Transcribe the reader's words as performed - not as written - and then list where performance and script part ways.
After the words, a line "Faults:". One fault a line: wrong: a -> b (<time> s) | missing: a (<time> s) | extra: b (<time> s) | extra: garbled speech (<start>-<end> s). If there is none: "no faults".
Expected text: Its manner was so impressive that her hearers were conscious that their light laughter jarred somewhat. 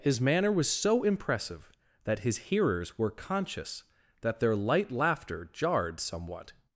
His manner was so impressive that his hearers were conscious that their light laughter jarred somewhat.
Faults:
wrong: Its -> His (0.0 s)
wrong: her -> his (2.2 s)